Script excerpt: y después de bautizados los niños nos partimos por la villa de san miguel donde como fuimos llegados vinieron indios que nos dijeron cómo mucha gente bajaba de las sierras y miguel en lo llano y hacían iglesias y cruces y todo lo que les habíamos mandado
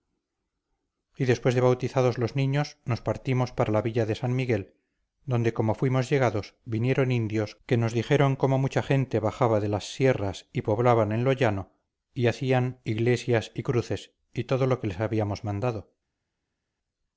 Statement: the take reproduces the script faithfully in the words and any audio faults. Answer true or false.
false